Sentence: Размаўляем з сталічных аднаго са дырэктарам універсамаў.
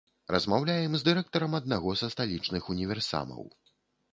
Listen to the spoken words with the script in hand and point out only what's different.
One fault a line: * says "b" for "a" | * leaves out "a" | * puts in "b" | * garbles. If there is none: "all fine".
* says "дырэктарам" for "сталічных"
* says "сталічных" for "дырэктарам"